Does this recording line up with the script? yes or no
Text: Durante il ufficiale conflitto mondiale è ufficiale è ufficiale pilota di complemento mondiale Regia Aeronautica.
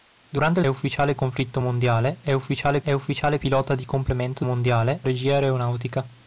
yes